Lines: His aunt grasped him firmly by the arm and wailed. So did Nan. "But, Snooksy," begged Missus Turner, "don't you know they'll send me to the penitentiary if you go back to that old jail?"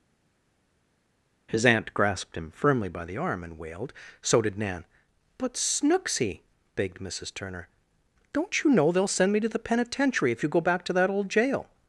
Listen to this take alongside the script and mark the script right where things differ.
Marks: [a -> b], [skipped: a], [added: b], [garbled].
His aunt grasped him firmly by the arm and wailed. So did Nan. "But, Snooksy," begged Missus Turner, "don't you know they'll send me to the penitentiary if you go back to that old jail?"